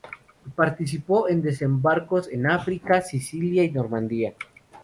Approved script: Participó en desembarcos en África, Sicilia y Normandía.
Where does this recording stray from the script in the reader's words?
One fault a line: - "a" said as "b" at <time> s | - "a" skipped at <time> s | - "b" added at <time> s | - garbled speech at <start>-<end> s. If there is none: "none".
none